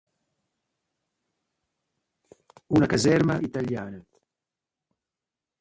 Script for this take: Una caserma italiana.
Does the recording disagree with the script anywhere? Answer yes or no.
no